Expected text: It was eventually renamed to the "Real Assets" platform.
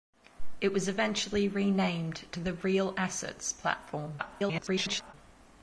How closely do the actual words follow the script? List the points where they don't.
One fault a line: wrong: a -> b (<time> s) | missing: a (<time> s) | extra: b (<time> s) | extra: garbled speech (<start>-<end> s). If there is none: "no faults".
extra: garbled speech (4.2-5.1 s)